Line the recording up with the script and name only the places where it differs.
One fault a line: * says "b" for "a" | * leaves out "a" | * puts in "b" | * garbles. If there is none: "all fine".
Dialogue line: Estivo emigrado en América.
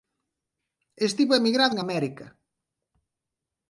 all fine